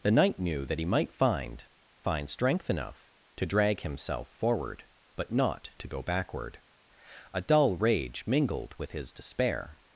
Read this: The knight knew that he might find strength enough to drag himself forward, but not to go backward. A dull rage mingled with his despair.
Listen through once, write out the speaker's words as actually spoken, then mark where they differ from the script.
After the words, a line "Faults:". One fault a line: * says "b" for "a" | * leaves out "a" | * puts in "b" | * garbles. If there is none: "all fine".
The knight knew that he might find find strength enough to drag himself forward, but not to go backward. A dull rage mingled with his despair.
Faults:
* puts in "find"